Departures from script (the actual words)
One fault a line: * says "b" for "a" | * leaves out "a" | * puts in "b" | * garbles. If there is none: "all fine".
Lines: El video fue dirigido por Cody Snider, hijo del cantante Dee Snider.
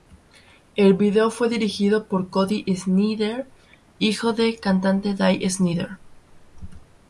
all fine